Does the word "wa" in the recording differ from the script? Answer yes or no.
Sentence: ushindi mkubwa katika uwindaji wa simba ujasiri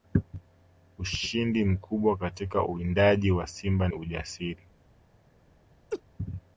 no